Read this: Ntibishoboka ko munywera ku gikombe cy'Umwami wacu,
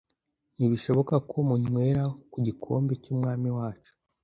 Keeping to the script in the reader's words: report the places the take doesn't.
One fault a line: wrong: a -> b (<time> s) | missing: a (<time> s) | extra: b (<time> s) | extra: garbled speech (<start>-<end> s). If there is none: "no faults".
no faults